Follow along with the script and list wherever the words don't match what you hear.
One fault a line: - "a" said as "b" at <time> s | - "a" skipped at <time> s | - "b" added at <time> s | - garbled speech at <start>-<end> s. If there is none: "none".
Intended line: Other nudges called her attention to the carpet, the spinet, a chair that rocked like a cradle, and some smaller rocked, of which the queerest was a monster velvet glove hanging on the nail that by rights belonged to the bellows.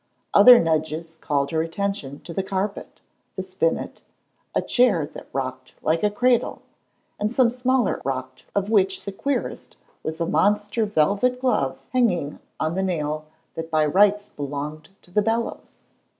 none